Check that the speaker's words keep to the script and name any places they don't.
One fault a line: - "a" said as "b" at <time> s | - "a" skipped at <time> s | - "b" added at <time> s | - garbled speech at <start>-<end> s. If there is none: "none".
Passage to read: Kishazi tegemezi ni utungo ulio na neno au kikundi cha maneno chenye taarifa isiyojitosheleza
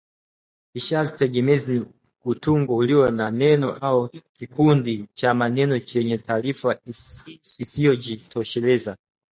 none